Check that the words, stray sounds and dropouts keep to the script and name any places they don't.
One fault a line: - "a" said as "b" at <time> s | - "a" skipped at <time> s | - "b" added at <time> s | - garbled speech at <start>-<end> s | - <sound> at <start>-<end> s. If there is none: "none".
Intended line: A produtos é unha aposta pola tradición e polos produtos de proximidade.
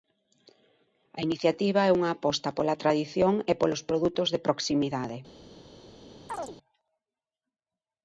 - "produtos" said as "iniciativa" at 1.3 s
- chirp at 6.3-6.6 s